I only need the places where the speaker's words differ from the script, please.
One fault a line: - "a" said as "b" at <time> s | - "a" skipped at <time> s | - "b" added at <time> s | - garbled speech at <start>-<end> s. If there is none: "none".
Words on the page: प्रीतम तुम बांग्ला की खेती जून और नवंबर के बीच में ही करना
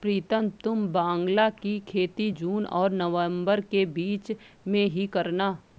none